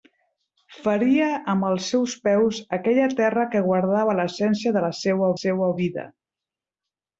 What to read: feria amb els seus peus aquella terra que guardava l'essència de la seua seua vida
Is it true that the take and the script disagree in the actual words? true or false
false